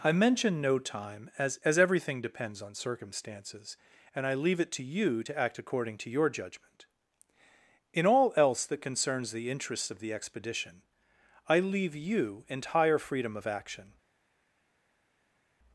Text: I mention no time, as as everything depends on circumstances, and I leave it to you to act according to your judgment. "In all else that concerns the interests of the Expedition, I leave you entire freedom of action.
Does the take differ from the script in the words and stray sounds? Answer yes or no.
no